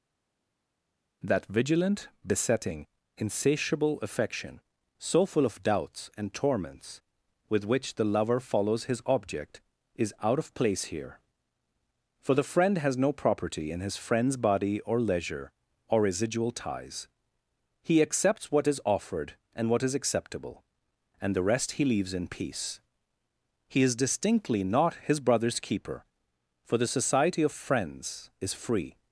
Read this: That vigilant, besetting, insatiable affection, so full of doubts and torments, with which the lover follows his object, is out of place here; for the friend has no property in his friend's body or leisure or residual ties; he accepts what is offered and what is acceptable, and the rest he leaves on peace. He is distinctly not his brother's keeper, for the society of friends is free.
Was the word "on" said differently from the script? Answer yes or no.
yes